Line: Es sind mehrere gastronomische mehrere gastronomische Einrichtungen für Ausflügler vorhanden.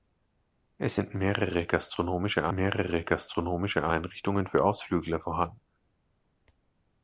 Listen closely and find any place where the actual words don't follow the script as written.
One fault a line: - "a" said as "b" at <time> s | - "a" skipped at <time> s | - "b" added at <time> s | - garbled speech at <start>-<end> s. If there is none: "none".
none